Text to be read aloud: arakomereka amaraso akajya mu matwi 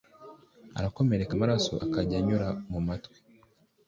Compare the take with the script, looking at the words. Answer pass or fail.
fail